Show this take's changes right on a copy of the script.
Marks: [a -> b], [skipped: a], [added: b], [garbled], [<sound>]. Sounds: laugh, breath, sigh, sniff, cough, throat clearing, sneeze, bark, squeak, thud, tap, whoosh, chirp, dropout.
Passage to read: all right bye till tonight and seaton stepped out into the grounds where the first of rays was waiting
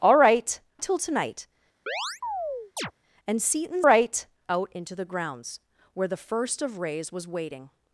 all right [skipped: bye] till tonight [chirp] and seaton [stepped -> right] out into the grounds where the first of rays was waiting